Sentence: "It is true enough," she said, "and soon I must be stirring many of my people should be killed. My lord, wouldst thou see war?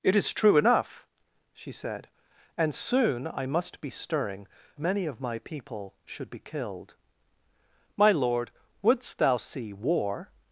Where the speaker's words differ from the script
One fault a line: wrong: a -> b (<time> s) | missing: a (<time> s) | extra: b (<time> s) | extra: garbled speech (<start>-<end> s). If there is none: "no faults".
no faults